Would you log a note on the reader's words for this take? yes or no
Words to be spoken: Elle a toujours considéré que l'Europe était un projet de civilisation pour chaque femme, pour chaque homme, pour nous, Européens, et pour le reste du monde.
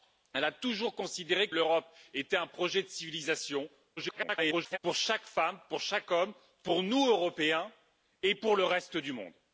yes